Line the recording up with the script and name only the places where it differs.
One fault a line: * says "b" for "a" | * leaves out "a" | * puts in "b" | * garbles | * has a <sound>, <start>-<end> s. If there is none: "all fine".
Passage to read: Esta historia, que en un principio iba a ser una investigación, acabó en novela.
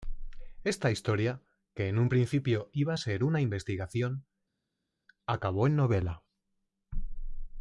all fine